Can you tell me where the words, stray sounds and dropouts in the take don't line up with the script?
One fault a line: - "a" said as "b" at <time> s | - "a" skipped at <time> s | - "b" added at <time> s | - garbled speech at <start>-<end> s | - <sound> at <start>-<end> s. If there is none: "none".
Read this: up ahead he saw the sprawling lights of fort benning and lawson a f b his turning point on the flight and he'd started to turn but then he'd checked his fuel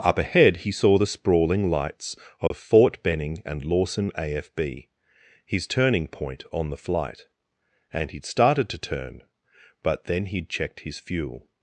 - dropout at 2.5-2.5 s